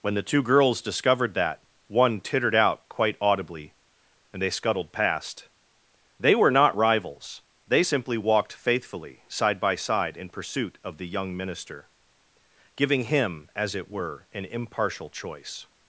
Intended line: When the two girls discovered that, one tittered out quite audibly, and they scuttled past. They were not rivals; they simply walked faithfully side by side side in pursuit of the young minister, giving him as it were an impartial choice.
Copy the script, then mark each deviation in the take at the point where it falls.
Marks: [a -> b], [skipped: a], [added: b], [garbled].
When the two girls discovered that, one tittered out quite audibly, and they scuttled past. They were not rivals; they simply walked faithfully side by side [skipped: side] in pursuit of the young minister, giving him as it were an impartial choice.